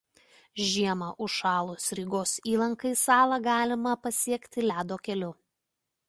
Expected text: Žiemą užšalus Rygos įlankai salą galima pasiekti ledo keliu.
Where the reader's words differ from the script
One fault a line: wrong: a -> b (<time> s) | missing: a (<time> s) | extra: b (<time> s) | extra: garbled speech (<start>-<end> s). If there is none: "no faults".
no faults